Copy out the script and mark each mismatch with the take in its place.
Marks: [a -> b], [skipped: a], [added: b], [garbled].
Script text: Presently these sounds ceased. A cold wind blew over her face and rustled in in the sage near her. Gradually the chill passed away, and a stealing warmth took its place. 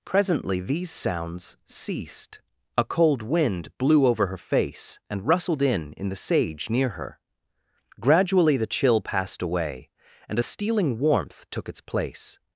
Presently these sounds ceased. A cold wind blew over her face and rustled in in the sage near her. Gradually the chill passed away, and a stealing warmth took its place.